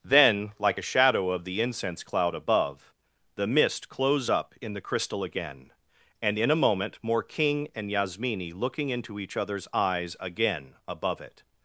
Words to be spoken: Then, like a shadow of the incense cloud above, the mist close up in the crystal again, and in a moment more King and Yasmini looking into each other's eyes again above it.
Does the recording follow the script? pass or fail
pass